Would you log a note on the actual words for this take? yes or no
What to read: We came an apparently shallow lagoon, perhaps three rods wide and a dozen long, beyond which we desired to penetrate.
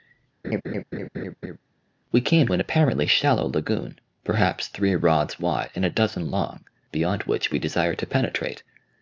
no